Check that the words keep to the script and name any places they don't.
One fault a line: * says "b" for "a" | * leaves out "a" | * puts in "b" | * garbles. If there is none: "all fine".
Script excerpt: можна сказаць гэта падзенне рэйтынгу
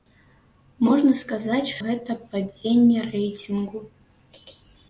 all fine